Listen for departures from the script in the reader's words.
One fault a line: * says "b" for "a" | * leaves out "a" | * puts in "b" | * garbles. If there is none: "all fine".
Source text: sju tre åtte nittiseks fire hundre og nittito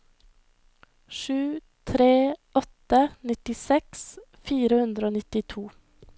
all fine